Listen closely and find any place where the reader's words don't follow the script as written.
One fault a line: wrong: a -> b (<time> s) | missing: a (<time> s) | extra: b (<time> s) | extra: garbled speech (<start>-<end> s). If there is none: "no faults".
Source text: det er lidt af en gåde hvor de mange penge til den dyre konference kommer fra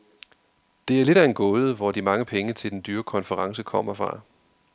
no faults